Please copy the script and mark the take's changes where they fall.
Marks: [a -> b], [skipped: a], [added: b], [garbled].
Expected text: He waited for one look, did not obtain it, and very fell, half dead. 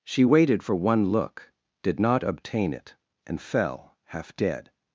[He -> She] waited for one look, did not obtain it, and [skipped: very] fell, half dead.